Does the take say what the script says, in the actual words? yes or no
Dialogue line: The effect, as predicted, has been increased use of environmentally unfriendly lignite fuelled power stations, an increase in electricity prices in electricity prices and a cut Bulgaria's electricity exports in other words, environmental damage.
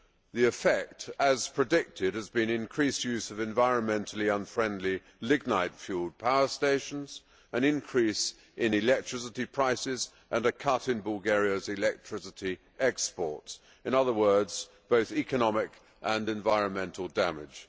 no